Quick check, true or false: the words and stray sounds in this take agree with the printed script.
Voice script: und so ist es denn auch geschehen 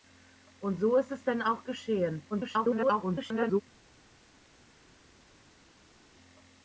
false